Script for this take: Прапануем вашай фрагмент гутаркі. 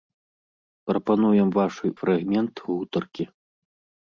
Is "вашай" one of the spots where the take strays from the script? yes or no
no